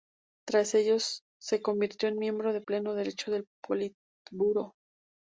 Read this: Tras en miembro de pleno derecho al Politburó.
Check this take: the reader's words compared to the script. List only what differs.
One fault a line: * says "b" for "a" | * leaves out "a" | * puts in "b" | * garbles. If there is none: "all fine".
* puts in "ello se convirtió"
* says "del" for "al"